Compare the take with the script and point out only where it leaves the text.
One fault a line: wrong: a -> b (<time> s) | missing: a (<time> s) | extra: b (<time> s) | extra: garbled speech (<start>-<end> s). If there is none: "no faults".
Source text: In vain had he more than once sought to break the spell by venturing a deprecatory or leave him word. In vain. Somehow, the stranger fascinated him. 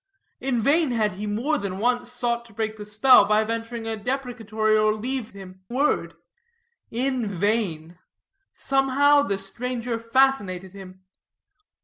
no faults